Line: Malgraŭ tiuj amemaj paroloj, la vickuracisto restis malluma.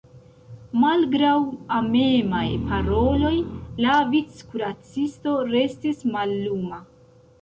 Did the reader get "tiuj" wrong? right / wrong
wrong